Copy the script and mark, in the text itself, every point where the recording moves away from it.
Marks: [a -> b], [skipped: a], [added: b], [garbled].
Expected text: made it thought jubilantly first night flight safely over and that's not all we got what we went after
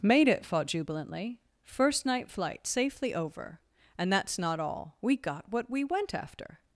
made it thought jubilantly first night flight safely over and that's not all we got what we went after